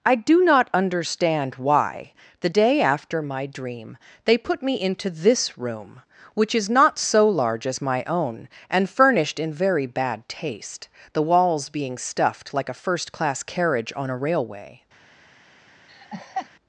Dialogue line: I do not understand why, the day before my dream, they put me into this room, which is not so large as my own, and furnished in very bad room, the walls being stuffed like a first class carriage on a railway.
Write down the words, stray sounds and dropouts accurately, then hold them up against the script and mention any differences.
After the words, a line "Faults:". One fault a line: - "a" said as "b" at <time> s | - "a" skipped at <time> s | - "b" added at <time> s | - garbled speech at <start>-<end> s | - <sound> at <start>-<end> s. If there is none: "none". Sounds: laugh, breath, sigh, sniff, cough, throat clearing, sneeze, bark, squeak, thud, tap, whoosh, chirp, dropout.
I do not understand why, the day after my dream, they put me into this room, which is not so large as my own, and furnished in very bad taste, the walls being stuffed like a first class carriage on a railway.
Faults:
- "before" said as "after" at 2.8 s
- "room" said as "taste" at 10.3 s
- laugh at 15.9-16.5 s